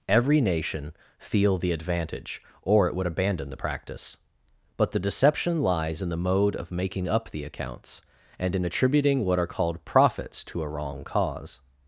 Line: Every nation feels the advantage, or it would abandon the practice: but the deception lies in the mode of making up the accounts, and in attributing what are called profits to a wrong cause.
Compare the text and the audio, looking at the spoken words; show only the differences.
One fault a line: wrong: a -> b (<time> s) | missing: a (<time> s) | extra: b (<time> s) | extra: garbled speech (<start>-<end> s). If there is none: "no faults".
wrong: feels -> feel (1.2 s)